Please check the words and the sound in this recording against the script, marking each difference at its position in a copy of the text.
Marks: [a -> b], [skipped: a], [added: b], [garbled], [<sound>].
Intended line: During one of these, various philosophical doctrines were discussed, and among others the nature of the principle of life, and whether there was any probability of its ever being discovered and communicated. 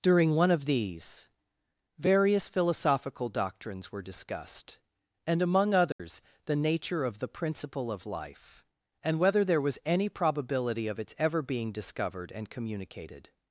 During one of these, various philosophical doctrines were discussed, and among others [dropout] the nature of the principle of life, and whether there was any probability of its ever being discovered and communicated.